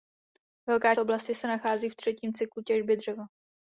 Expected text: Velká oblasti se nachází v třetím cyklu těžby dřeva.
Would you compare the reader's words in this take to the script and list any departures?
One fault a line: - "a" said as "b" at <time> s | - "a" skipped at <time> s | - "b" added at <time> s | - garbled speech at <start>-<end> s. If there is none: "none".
none